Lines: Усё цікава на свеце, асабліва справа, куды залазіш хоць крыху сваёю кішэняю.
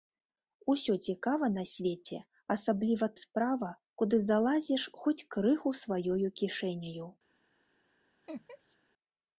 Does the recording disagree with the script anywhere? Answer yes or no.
no